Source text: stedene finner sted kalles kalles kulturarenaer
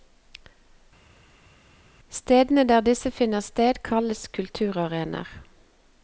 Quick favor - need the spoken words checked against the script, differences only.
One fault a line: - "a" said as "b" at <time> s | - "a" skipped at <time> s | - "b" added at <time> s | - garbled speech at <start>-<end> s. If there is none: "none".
- "der disse" added at 2.6 s
- "kalles" skipped at 4.3 s